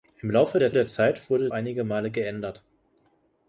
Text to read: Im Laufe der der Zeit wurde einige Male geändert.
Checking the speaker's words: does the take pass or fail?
pass